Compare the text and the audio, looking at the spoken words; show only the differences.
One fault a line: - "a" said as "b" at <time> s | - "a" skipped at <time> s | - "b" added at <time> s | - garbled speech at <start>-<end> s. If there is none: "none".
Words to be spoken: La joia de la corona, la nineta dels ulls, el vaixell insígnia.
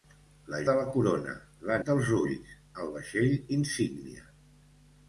- "joia" skipped at 0.6 s
- "nineta" skipped at 1.8 s